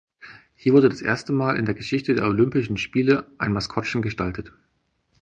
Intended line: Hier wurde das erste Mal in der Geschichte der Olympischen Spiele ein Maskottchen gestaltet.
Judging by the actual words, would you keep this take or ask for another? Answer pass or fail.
pass